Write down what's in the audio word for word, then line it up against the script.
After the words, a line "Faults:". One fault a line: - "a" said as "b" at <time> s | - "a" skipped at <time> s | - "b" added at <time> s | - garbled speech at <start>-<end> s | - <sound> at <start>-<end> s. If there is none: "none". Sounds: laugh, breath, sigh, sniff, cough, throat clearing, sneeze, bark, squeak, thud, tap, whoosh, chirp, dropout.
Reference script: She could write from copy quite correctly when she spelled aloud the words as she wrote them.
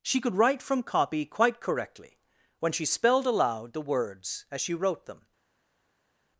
She could write from copy quite correctly when she spelled aloud the words as she wrote them.
Faults:
none